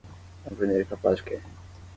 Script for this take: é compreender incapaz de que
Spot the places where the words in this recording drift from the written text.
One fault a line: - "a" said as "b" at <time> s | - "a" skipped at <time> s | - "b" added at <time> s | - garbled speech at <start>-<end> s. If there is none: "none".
none